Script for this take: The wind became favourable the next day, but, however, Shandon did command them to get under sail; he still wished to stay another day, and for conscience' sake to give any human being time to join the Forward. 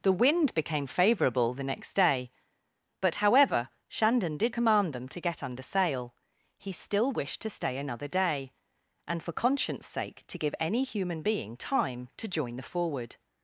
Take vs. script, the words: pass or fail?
pass